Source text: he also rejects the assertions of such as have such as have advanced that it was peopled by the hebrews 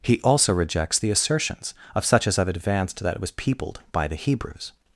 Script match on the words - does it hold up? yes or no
no